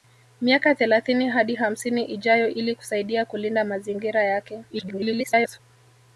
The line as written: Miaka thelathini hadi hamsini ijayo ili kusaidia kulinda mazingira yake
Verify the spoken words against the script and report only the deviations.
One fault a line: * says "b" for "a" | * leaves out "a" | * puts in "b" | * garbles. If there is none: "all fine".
* garbles